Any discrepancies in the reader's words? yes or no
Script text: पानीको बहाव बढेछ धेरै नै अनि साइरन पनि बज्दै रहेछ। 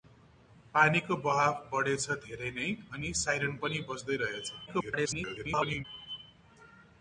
yes